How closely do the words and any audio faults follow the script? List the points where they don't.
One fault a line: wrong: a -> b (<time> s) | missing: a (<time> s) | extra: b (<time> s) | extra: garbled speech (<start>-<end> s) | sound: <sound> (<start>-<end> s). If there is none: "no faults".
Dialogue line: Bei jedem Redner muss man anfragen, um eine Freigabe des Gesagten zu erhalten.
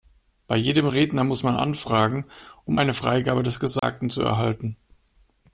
sound: dropout (3.8-3.8 s)